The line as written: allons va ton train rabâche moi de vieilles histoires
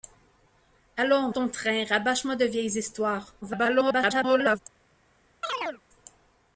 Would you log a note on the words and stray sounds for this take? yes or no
yes